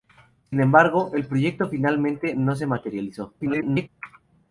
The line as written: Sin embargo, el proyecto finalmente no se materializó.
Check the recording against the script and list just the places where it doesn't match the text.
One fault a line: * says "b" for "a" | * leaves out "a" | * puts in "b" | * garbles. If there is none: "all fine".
* garbles